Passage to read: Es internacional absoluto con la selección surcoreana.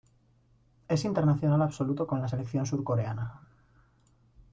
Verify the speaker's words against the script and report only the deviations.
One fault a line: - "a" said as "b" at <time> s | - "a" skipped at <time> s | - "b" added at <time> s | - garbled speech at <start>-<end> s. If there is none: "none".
none